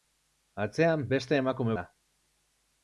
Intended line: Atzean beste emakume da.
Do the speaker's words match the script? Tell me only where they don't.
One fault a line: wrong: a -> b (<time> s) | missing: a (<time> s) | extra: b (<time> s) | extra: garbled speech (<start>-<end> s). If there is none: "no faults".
no faults